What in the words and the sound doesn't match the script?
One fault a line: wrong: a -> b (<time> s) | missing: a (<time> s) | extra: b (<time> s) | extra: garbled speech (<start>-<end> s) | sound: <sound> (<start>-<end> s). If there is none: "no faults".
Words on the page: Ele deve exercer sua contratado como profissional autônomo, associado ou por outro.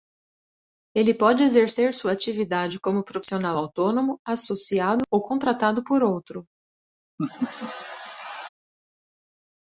wrong: deve -> pode (1.1 s)
wrong: contratado -> atividade (2.1 s)
extra: contratado (5.2 s)
sound: laugh (7.2-8.5 s)